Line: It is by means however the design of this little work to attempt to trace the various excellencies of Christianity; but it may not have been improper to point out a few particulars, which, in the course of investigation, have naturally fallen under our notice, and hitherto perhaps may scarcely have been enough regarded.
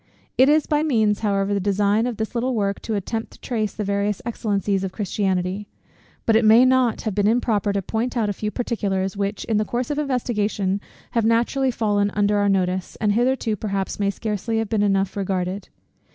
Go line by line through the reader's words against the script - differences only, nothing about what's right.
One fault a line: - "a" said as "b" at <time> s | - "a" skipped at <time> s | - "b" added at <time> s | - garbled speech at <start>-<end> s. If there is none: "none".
none